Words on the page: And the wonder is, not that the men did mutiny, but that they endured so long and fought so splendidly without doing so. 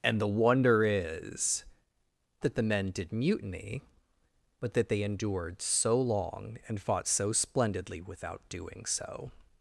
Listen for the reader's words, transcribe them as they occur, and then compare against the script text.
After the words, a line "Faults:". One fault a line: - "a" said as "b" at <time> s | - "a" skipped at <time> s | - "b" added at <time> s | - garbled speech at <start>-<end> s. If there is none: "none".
And the wonder is, that the men did mutiny, but that they endured so long and fought so splendidly without doing so.
Faults:
- "not" skipped at 1.6 s